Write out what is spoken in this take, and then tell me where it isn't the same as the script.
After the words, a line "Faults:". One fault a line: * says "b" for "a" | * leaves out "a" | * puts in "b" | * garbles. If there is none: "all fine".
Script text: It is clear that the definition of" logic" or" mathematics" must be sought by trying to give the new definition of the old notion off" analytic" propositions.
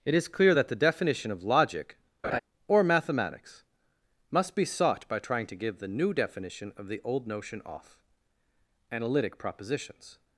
It is clear that the definition of" logic" or" mathematics" must be sought by trying to give the new definition of the old notion off" analytic" propositions.
Faults:
all fine